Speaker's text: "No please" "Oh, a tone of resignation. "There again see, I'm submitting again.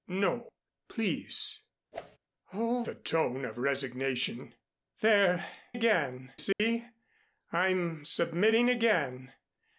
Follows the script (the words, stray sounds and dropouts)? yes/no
no